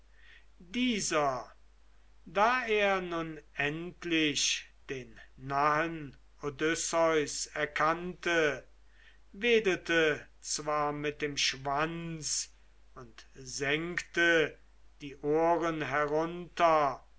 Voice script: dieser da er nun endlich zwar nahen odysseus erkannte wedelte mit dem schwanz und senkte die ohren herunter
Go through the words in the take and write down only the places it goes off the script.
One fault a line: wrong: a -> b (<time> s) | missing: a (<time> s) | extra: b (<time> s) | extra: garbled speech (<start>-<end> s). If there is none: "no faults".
wrong: zwar -> den (4.9 s)
extra: zwar (10.4 s)